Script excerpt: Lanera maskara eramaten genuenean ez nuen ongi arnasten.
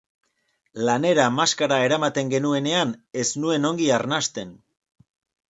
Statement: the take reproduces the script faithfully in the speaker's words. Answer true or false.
true